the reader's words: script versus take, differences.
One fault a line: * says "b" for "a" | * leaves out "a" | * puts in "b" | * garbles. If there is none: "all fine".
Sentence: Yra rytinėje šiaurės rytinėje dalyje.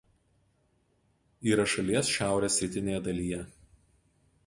* says "šalies" for "rytinėje"